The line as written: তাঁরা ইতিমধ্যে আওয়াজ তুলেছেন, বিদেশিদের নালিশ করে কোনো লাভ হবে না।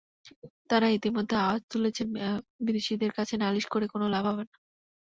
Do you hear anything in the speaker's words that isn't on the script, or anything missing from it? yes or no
yes